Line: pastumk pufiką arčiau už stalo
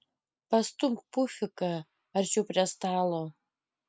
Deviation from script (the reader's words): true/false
true